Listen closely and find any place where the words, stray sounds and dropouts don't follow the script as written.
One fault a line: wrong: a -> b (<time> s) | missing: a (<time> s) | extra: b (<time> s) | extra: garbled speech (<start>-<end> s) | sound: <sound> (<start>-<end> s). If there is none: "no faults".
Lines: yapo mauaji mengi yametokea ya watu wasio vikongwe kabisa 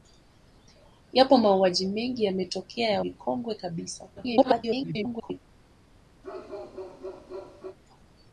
missing: watu wasio (3.0 s)
extra: garbled speech (4.2-5.4 s)
sound: bark (6.2-7.8 s)